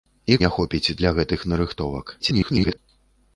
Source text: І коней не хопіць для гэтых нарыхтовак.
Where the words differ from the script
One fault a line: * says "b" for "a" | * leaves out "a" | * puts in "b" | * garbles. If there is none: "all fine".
* leaves out "коней"
* garbles